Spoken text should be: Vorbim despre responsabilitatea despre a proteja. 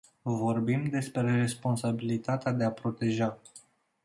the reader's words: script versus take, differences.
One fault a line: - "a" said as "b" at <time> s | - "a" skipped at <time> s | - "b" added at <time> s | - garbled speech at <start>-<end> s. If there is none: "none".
- "despre" said as "de" at 2.5 s